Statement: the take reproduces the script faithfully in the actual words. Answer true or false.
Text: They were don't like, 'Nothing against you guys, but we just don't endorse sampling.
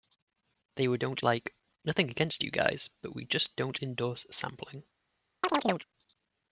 true